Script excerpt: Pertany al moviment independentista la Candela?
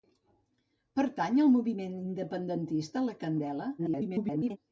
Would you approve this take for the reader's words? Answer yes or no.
no